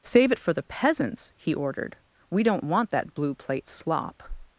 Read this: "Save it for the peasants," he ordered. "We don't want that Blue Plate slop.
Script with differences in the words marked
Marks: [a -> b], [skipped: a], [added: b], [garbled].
"Save it for the peasants," he ordered. "We don't want that Blue Plate slop.